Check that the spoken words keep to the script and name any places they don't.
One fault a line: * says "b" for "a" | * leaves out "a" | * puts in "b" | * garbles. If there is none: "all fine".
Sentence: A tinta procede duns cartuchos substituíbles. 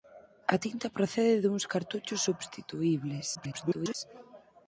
* garbles